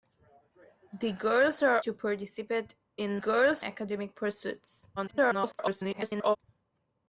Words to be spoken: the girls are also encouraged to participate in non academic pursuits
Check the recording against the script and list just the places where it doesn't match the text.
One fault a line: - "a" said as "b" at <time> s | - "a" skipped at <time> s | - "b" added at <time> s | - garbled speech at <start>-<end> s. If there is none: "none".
- "also encouraged" skipped at 1.8 s
- "non" said as "girls" at 3.1 s
- garbled speech at 5.0-6.4 s